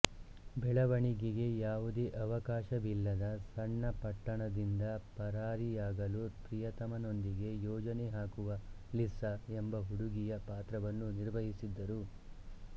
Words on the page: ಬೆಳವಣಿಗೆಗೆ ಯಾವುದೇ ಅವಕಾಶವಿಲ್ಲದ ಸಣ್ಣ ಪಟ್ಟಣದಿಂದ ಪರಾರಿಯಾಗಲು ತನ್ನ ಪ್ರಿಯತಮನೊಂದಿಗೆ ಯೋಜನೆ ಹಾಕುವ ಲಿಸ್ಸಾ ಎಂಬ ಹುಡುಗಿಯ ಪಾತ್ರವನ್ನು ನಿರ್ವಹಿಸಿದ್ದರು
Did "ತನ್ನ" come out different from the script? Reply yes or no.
yes